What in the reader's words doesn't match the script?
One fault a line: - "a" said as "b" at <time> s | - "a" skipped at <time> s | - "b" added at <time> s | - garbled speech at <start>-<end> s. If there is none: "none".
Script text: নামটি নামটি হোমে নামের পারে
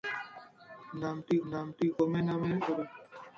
none